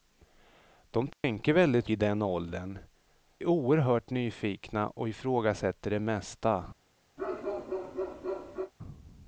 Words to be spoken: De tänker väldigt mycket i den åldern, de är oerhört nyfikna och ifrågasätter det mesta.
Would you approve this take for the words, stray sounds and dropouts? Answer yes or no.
no